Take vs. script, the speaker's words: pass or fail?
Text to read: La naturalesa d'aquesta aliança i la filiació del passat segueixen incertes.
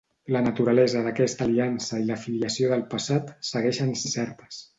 pass